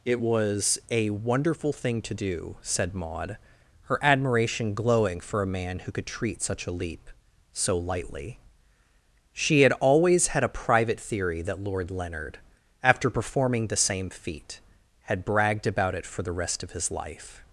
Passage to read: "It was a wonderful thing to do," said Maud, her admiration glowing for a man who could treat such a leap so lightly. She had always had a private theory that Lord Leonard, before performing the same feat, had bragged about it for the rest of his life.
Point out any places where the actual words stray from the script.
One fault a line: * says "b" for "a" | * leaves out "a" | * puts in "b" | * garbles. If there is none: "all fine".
* says "after" for "before"